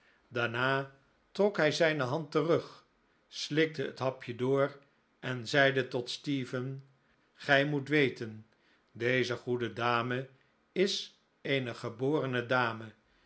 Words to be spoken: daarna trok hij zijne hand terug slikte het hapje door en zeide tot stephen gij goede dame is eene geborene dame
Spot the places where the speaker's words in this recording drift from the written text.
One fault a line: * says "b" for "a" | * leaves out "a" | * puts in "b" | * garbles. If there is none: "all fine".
* puts in "moet weten deze"